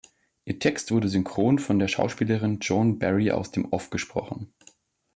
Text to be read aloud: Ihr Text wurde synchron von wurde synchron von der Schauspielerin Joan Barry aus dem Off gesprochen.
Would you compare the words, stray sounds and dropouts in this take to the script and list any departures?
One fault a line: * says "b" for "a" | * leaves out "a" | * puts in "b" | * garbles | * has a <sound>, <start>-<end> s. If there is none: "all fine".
* leaves out "wurde synchron von"